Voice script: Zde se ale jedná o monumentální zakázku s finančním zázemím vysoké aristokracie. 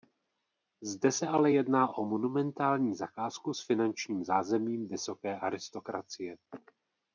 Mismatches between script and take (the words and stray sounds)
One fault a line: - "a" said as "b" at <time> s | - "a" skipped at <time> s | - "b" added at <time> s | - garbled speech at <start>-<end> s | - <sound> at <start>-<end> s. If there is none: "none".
none